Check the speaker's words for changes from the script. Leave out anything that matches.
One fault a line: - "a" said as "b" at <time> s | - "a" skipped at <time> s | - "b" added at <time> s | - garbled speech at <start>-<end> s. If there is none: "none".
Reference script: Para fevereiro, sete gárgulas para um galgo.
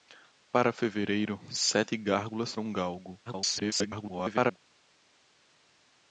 - "para" skipped at 2.5 s
- garbled speech at 3.3-4.6 s